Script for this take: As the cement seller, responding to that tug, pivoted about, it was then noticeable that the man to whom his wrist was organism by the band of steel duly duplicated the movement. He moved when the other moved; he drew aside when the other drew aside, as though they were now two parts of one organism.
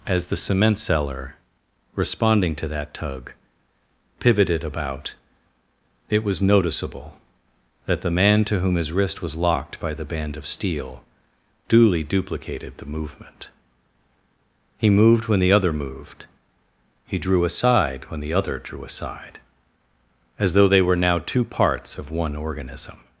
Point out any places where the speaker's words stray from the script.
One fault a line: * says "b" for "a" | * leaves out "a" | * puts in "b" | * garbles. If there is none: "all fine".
* leaves out "then"
* says "locked" for "organism"